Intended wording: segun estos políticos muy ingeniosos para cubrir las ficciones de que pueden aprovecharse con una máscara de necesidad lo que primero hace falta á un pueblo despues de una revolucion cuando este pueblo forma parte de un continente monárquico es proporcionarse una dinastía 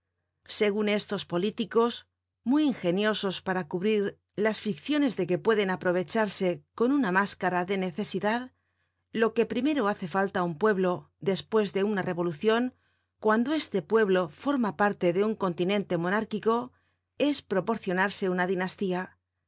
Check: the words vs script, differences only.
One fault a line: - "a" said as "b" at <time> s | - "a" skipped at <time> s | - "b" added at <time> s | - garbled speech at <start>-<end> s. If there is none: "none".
none